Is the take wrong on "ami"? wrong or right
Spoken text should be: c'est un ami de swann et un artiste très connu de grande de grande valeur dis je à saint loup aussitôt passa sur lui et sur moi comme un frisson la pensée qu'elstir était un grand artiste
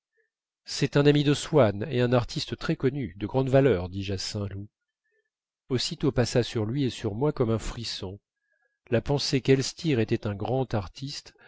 right